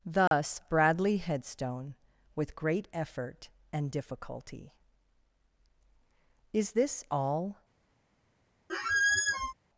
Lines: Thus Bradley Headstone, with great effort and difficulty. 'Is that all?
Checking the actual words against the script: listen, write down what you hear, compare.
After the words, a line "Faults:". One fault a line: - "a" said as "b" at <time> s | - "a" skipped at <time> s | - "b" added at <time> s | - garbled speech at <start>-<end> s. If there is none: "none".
Thus Bradley Headstone, with great effort and difficulty. 'Is this all?
Faults:
- "that" said as "this" at 6.7 s